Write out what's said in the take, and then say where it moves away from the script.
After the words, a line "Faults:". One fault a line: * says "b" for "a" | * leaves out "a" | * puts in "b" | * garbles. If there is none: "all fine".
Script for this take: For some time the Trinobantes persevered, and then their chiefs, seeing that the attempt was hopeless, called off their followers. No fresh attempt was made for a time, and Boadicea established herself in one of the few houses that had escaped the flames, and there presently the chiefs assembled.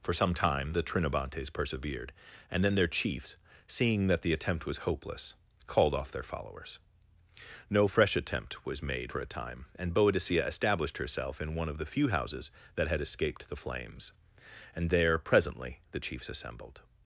For some time the Trinobantes persevered, and then their chiefs, seeing that the attempt was hopeless, called off their followers. No fresh attempt was made for a time, and Boadicea established herself in one of the few houses that had escaped the flames, and there presently the chiefs assembled.
Faults:
all fine